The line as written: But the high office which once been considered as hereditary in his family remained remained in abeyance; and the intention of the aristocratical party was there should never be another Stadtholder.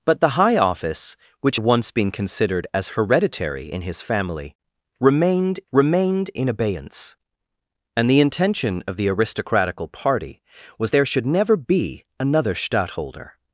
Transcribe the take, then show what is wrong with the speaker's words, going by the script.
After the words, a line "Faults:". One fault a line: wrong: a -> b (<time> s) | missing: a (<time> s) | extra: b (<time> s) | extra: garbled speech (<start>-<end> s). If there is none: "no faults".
But the high office which once been considered as hereditary in his family remained remained in abeyance; and the intention of the aristocratical party was there should never be another Stadtholder.
Faults:
no faults